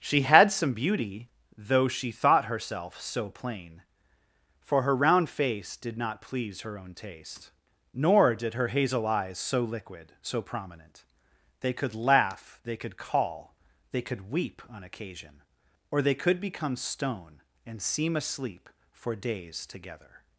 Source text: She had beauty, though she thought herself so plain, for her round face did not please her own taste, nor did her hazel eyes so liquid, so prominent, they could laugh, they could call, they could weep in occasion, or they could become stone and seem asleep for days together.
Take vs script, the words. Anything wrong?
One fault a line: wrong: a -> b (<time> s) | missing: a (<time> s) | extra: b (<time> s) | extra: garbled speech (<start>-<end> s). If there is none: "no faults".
extra: some (0.5 s)
wrong: in -> on (14.7 s)